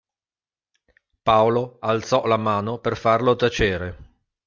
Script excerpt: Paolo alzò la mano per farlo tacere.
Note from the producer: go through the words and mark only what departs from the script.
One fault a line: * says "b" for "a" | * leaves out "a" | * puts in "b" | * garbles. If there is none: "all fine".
all fine